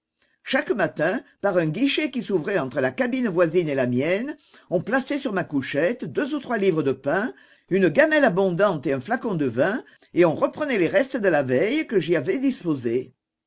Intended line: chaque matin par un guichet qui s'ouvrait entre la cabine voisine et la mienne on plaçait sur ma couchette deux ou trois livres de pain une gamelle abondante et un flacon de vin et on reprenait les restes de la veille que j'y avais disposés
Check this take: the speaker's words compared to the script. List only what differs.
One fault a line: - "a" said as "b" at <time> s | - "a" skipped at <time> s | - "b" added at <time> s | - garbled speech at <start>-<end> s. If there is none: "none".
none